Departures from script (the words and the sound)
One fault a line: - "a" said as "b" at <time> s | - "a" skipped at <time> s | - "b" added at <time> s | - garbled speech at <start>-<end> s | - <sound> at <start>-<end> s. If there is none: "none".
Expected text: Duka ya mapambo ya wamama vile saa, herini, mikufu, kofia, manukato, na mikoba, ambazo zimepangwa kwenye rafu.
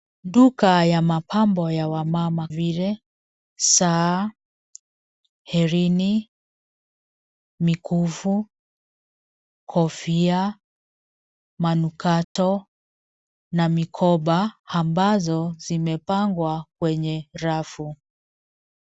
- dropout at 12.2-12.4 s